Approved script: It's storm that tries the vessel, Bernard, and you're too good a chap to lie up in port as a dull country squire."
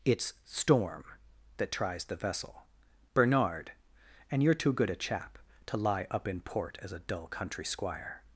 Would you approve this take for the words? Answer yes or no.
yes